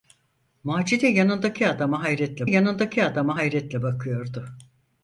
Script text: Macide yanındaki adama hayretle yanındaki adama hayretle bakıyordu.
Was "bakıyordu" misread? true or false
false